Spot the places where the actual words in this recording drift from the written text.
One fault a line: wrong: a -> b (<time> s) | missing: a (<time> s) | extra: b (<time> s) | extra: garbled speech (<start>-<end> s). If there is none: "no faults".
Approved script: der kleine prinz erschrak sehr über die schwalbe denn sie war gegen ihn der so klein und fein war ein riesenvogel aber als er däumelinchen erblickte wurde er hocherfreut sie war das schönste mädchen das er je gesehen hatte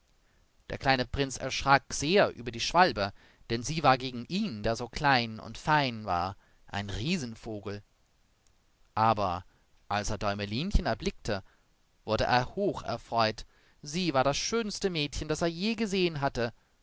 no faults